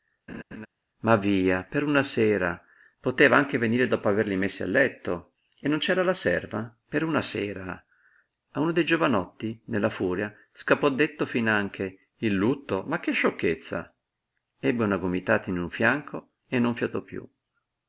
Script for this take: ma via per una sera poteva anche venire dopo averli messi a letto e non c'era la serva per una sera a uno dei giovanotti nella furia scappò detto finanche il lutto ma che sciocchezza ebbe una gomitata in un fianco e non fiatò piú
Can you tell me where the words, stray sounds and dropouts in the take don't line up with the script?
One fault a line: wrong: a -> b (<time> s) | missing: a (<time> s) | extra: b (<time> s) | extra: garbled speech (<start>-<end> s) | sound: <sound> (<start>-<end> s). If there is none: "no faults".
sound: laugh (0.3-0.7 s)